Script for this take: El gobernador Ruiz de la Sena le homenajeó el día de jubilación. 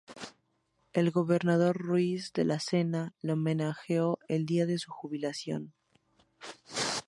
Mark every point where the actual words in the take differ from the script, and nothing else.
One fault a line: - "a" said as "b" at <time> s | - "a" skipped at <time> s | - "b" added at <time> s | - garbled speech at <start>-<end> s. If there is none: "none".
- "su" added at 4.8 s